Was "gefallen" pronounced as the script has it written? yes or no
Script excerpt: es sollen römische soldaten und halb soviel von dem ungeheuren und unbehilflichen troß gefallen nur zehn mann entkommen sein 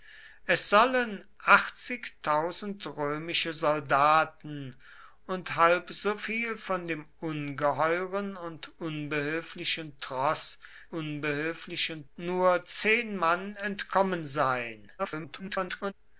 no